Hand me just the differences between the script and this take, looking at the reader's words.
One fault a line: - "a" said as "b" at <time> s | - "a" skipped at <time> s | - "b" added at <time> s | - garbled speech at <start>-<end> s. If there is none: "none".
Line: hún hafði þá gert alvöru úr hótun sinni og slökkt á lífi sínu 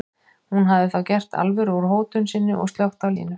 - "lífi" skipped at 3.1 s